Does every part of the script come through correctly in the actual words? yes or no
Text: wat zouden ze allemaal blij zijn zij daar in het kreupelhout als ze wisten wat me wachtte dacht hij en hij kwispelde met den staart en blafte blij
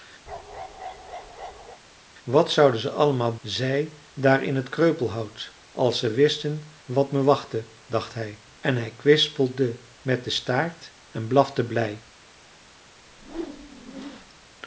no